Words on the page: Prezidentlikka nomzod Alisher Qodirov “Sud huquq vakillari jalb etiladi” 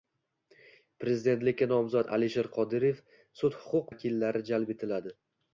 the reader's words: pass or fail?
pass